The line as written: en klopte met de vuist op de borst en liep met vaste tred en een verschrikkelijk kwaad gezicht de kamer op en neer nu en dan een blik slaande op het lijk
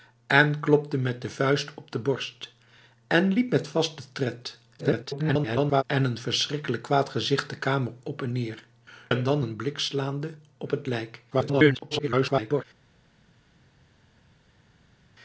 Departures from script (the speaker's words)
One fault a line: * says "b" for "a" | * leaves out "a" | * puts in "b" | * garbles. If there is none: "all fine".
* garbles
* leaves out "nu"
* garbles